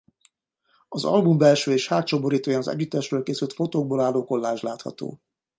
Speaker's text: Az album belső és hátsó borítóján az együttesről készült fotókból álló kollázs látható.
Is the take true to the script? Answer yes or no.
yes